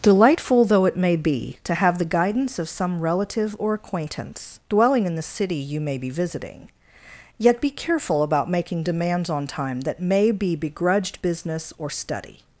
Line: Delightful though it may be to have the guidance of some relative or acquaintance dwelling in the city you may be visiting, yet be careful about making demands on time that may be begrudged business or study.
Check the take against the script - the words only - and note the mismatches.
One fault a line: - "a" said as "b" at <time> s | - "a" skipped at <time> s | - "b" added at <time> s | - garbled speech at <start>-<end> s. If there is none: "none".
none